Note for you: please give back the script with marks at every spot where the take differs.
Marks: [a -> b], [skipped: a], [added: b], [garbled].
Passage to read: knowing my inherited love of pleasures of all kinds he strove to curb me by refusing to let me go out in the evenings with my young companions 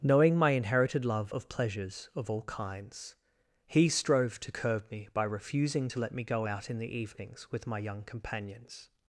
knowing my inherited love of pleasures of all kinds he strove to curb me by refusing to let me go out in the evenings with my young companions